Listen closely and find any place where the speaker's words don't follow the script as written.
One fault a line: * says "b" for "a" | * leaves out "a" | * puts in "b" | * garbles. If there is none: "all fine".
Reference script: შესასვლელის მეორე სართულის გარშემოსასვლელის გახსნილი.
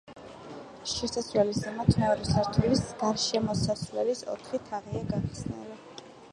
* puts in "ზემოთ"
* puts in "ოთხი თაღია"